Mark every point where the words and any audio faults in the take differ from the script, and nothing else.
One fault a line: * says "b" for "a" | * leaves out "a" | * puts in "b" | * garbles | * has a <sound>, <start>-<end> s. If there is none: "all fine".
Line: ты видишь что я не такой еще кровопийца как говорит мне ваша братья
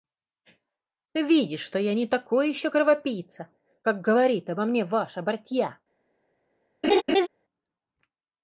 * puts in "обо"
* has a laugh, 6.8-7.3 s